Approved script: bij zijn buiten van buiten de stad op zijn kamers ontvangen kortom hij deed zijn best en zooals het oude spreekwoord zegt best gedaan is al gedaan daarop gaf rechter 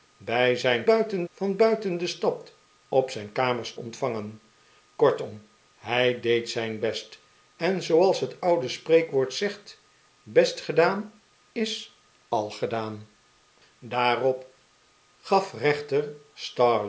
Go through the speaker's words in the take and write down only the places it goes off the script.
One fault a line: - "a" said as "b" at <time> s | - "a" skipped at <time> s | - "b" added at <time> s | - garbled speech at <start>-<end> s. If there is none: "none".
none